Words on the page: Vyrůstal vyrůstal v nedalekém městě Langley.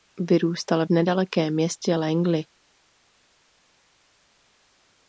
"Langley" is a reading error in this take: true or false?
false